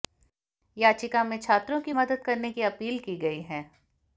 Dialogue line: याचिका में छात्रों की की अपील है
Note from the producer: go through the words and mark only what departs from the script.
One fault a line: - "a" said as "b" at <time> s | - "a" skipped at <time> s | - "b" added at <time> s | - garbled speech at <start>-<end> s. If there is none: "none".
- "मदद करने" added at 1.9 s
- "की गई" added at 3.0 s